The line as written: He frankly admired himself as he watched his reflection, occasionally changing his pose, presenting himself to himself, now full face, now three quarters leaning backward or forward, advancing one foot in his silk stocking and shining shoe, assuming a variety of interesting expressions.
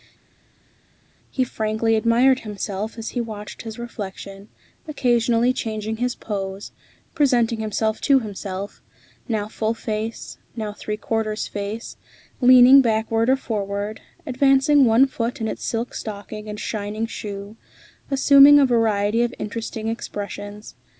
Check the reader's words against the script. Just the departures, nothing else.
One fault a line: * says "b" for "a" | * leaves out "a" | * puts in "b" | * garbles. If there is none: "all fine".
* puts in "face"
* says "its" for "his"